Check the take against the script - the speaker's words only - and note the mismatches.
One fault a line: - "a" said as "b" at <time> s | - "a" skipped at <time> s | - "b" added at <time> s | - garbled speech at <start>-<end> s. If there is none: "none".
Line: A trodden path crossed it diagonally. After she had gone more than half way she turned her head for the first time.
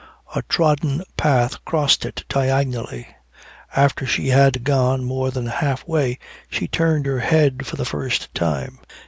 none